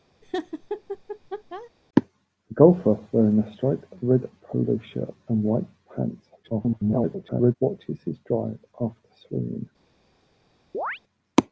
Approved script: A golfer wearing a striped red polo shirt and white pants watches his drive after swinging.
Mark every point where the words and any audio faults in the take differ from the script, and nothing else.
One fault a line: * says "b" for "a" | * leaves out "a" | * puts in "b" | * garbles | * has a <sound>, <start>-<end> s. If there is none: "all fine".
* has a laugh, 0.2-1.7 s
* garbles
* has a chirp, 10.7-11.0 s